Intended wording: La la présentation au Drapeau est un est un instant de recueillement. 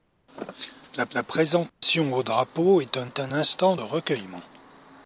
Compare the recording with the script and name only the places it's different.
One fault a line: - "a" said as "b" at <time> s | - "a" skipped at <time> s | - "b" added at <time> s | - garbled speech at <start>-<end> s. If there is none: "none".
none